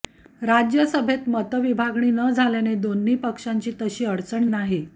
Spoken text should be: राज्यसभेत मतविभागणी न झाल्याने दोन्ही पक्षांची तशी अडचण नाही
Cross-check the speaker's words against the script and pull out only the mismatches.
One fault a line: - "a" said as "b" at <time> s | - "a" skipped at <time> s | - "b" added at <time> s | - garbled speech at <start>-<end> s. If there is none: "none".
none